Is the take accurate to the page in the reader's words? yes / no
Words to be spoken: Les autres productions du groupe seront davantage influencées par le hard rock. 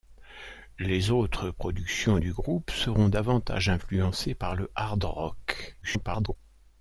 no